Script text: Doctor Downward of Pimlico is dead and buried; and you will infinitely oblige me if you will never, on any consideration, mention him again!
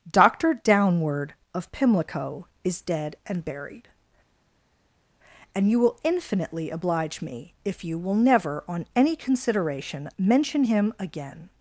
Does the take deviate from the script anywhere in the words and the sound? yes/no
no